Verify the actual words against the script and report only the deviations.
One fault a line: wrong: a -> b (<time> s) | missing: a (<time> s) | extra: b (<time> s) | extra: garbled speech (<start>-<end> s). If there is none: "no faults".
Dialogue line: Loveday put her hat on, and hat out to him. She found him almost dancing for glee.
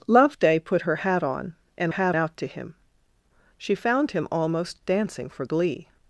no faults